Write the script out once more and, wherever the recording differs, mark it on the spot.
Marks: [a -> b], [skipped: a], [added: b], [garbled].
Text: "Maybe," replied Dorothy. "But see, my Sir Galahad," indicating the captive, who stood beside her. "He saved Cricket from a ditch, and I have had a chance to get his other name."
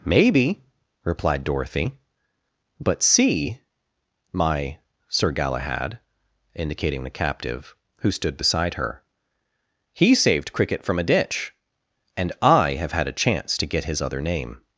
"Maybe," replied Dorothy. "But see, my Sir Galahad," indicating the captive, who stood beside her. "He saved Cricket from a ditch, and I have had a chance to get his other name."